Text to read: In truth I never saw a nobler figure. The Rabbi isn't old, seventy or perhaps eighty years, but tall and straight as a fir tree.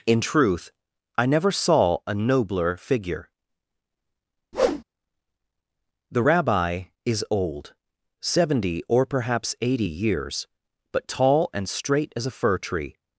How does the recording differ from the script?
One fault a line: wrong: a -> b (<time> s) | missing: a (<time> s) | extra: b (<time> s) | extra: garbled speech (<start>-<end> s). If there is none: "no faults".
wrong: isn't -> is (7.1 s)